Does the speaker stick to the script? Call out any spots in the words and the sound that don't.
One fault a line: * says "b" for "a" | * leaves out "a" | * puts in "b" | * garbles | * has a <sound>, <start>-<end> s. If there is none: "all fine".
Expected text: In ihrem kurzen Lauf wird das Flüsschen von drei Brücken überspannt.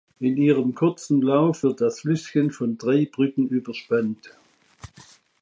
all fine